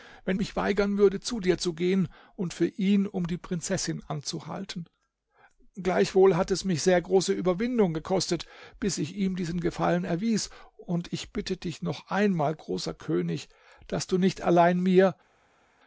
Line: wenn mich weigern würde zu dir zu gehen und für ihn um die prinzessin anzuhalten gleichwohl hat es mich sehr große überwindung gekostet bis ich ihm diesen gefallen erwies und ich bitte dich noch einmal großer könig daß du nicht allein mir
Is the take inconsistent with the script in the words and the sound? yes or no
no